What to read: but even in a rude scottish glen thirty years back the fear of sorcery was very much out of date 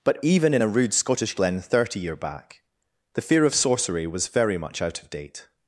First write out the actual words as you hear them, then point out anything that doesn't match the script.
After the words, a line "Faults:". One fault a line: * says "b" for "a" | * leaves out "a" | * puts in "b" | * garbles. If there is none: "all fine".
but even in a rude scottish glen thirty year back the fear of sorcery was very much out of date
Faults:
* says "year" for "years"